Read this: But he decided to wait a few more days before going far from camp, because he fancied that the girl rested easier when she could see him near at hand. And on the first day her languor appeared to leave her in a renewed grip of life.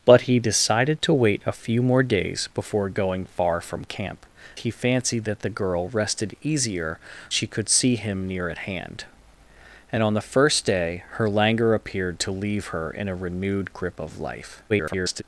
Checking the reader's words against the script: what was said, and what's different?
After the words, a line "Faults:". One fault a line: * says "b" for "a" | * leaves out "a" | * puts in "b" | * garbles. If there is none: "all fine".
But he decided to wait a few more days before going far from camp, he fancied that the girl rested easier she could see him near at hand. And on the first day her languor appeared to leave her in a renewed grip of life. [garbled]
Faults:
* leaves out "because"
* leaves out "when"
* garbles